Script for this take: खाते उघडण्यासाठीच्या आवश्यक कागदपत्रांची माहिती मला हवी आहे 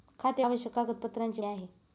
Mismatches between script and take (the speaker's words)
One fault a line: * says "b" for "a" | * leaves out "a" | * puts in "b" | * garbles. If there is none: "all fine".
* leaves out "उघडण्यासाठीच्या"
* leaves out "माहिती मला हवी"